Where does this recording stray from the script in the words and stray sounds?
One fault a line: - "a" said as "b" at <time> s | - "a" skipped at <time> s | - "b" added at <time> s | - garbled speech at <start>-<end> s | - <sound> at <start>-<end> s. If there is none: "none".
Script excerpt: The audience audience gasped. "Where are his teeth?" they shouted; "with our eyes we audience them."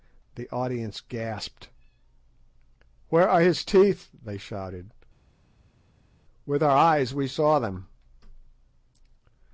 - "audience" skipped at 1.0 s
- "audience" said as "saw" at 7.3 s